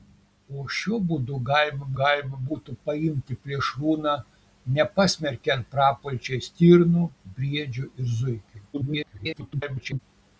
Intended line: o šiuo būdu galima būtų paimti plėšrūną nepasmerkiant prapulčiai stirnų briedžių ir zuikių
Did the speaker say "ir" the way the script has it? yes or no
yes